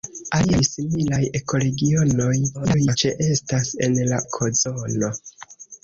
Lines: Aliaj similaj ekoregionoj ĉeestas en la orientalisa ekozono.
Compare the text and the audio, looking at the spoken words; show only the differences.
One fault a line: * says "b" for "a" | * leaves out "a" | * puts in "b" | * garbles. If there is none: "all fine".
* garbles
* leaves out "orientalisa"